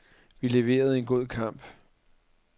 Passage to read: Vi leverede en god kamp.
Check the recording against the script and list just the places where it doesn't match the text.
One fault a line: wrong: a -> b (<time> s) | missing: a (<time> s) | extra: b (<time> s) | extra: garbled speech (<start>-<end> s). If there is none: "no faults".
no faults